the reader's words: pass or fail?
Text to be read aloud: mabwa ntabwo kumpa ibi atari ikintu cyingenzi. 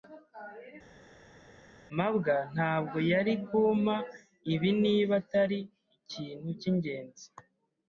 fail